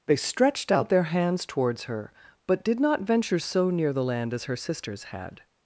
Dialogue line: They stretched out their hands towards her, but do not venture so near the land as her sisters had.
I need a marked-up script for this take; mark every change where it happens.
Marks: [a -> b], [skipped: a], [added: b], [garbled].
They stretched out their hands towards her, but [do -> did] not venture so near the land as her sisters had.